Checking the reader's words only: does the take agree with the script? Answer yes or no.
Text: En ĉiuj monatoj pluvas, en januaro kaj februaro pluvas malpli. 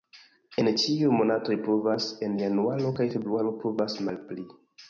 yes